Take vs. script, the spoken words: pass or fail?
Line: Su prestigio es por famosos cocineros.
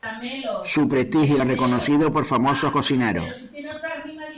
fail